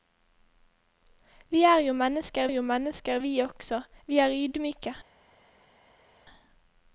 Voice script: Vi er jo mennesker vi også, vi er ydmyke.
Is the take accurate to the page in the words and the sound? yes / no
no